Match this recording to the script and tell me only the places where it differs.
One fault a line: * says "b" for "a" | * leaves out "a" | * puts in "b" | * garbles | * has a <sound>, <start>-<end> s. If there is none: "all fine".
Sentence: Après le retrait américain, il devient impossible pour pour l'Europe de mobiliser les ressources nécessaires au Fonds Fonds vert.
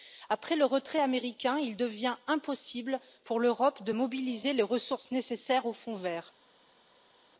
* leaves out "pour"
* leaves out "Fonds"